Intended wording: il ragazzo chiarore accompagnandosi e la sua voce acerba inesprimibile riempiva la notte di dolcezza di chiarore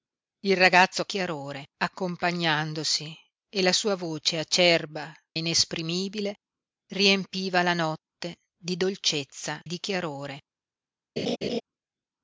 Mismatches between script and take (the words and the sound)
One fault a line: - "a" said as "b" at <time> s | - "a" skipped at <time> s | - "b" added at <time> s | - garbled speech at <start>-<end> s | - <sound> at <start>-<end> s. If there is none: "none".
- laugh at 11.2-11.6 s